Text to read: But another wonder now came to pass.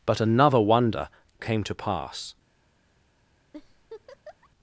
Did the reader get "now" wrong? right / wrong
wrong